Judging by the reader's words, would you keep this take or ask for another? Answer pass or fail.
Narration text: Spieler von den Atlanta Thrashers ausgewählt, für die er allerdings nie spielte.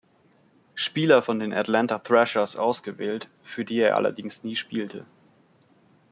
pass